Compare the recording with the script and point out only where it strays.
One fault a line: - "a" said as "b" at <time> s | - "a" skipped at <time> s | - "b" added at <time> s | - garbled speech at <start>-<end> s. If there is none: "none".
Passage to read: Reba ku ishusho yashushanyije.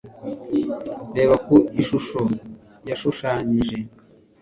none